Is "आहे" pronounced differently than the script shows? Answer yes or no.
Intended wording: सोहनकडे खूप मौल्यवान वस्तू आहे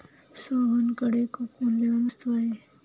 no